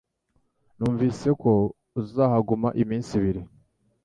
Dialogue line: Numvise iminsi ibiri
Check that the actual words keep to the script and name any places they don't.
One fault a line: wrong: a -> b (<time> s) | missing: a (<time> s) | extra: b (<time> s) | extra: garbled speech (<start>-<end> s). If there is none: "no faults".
extra: ko uzahaguma (1.4 s)